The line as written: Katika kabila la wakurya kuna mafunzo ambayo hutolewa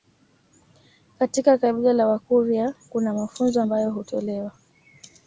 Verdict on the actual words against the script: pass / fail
pass